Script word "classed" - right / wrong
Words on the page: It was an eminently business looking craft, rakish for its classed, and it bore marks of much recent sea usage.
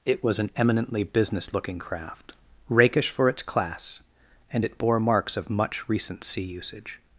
wrong